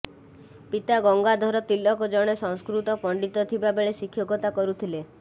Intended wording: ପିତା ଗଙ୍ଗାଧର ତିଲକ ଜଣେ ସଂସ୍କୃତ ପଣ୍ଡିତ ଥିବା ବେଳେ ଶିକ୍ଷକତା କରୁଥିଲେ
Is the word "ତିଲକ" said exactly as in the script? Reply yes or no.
yes